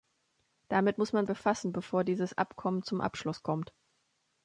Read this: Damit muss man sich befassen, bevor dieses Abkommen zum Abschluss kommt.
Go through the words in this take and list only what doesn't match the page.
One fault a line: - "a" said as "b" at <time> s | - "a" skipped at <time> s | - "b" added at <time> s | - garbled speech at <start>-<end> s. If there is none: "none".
- "sich" skipped at 1.3 s